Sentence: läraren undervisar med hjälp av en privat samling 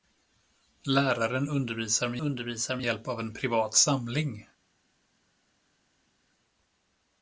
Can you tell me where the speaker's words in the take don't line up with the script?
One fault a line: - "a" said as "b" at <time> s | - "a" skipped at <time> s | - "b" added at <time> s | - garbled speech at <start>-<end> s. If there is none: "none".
- "undervisar med" added at 2.2 s